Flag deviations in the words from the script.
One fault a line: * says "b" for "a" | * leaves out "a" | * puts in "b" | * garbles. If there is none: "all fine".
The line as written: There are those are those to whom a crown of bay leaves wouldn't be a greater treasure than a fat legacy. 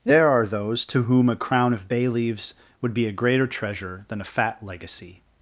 * leaves out "are those"
* says "would" for "wouldn't"